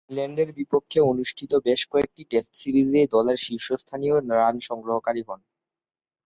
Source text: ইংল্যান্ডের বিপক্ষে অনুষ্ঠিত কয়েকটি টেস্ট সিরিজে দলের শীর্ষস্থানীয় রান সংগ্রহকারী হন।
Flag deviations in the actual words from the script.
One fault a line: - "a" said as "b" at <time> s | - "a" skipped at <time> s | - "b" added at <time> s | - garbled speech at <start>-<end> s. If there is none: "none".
- "বেশ" added at 1.6 s